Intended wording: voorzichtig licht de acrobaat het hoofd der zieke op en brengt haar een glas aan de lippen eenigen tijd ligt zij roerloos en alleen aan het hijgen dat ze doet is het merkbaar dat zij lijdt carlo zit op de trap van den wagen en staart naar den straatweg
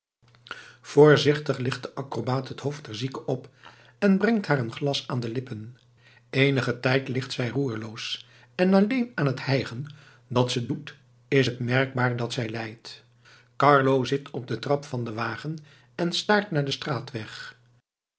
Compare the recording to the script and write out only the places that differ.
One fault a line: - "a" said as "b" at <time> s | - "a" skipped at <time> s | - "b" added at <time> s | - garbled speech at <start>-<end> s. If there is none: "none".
none